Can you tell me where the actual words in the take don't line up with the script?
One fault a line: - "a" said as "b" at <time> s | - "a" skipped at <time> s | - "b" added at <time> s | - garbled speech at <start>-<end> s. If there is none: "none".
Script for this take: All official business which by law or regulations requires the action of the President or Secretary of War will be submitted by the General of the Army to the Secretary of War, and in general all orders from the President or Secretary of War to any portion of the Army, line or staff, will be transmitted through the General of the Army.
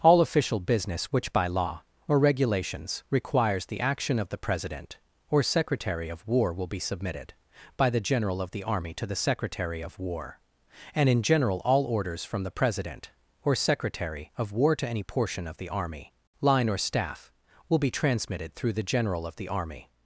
none